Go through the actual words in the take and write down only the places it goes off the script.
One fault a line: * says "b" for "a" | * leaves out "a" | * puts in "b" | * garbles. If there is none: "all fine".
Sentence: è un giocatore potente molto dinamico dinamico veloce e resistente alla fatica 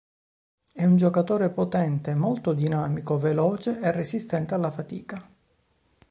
* leaves out "dinamico"